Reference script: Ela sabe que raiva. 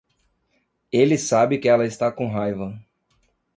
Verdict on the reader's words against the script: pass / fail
fail